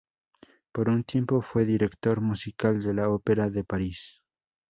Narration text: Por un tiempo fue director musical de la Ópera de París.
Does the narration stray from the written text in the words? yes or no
no